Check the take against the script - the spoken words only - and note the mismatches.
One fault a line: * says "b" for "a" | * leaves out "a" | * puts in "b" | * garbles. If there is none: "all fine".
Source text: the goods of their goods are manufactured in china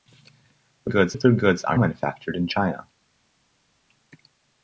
all fine